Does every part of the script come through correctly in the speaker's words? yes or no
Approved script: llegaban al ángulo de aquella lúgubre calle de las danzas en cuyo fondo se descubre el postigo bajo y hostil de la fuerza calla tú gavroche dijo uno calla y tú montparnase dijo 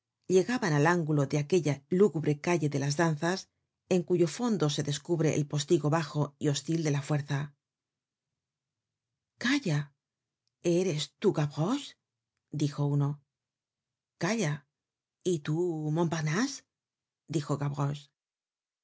no